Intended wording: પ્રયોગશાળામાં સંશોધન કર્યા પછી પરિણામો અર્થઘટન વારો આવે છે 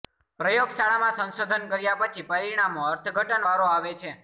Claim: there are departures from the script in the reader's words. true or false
false